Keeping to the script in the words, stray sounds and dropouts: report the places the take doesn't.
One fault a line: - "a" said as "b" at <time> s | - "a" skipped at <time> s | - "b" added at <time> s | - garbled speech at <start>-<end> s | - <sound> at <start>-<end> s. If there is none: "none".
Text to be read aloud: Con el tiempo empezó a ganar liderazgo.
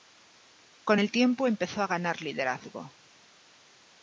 none